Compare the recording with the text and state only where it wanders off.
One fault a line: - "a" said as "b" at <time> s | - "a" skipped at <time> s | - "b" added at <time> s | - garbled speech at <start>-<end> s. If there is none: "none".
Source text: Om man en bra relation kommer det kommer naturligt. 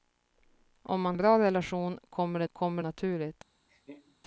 none